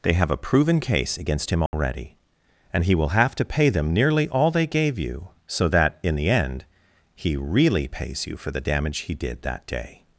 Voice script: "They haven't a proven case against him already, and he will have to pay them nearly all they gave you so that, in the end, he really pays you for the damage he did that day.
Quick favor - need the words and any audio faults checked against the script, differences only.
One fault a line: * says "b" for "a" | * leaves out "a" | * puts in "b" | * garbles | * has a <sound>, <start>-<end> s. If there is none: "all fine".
* says "have" for "haven't"
* has a dropout, 1.7-1.7 s